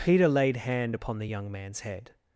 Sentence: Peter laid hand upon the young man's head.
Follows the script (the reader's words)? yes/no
yes